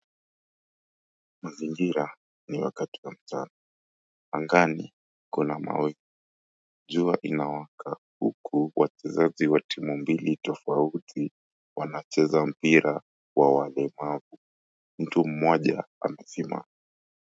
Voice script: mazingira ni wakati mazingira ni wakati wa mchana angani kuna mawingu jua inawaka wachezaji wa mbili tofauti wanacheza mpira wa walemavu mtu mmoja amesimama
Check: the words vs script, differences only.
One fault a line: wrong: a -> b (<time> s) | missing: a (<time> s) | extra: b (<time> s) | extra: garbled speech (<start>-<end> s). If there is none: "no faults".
missing: mazingira ni wakati (3.0 s)
extra: huku (8.2 s)
extra: timu (9.6 s)